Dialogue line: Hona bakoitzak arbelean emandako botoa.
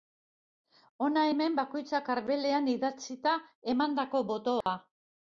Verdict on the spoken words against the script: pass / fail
fail